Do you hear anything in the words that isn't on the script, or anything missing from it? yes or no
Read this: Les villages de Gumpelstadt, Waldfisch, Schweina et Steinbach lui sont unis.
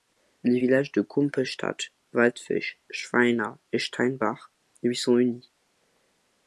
no